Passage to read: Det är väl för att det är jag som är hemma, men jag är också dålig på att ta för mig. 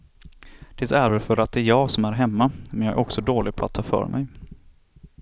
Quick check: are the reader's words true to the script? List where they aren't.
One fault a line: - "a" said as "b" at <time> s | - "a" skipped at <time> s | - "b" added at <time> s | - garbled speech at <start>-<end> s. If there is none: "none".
none